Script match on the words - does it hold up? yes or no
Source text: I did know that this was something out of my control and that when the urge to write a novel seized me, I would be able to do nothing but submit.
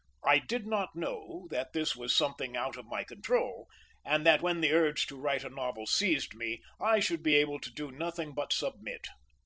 no